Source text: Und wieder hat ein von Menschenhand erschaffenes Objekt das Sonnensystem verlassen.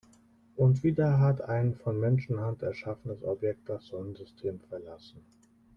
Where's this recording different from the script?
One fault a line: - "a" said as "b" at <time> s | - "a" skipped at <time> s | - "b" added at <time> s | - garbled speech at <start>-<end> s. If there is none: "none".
none